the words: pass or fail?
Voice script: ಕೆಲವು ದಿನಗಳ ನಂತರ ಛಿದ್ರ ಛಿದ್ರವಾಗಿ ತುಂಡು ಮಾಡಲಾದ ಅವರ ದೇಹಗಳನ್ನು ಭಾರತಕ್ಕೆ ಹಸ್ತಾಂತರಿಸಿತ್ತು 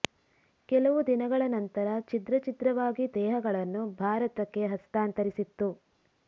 fail